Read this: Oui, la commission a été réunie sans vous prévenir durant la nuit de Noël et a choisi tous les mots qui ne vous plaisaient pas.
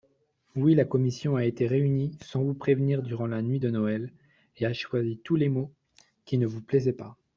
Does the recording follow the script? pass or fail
pass